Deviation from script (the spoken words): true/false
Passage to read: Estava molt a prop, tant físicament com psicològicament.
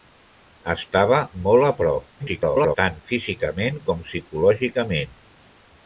true